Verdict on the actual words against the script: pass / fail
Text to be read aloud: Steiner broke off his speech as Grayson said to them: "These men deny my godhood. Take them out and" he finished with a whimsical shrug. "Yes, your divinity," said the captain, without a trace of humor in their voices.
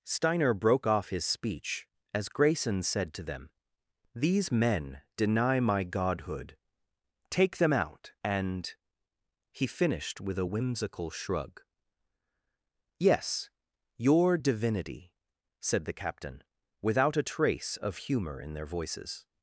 pass